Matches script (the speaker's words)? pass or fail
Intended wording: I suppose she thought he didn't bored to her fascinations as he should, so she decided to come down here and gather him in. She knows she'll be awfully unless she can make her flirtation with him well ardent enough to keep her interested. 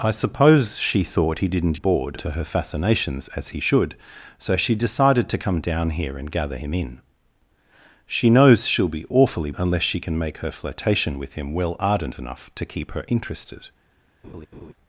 pass